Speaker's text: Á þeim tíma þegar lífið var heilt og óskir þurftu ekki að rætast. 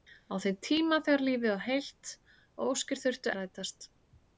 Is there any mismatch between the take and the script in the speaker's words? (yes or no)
yes